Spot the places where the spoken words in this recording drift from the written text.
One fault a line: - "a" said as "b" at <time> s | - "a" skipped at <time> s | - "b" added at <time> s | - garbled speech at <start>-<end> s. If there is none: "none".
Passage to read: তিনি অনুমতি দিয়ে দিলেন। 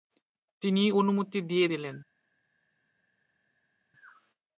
none